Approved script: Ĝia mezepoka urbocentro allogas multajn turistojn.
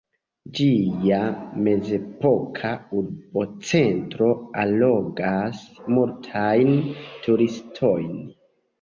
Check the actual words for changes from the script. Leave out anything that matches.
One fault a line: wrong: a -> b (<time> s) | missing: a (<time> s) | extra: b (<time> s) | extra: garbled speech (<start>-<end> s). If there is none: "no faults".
no faults